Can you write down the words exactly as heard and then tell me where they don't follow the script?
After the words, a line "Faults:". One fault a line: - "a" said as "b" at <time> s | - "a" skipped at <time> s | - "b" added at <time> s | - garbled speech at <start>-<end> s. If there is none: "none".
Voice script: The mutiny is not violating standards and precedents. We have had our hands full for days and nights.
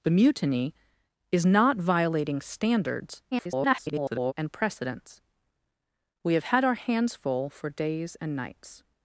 The mutiny is not violating standards [garbled] and precedents. We have had our hands full for days and nights.
Faults:
- garbled speech at 3.3-4.3 s